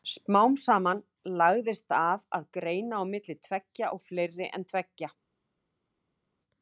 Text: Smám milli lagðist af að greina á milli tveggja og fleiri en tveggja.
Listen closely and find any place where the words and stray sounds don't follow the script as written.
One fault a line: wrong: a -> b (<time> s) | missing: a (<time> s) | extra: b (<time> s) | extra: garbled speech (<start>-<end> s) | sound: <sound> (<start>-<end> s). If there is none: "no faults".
wrong: milli -> saman (0.6 s)